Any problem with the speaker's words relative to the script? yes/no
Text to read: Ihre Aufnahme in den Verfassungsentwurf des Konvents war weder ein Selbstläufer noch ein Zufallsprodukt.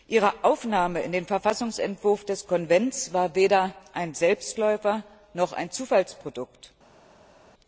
no